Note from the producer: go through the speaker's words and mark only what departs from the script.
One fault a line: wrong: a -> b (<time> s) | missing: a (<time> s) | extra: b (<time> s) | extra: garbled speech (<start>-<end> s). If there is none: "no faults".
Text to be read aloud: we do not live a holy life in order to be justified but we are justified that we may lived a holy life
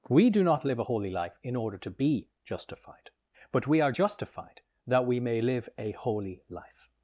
wrong: lived -> live (5.4 s)